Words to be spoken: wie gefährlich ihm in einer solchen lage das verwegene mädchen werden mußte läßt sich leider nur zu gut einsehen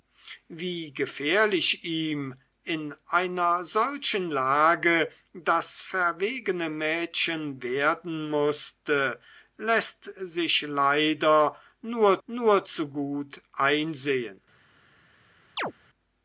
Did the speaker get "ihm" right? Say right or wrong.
right